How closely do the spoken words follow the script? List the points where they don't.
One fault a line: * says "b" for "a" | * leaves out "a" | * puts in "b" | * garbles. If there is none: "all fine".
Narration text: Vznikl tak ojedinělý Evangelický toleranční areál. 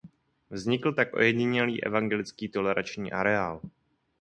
all fine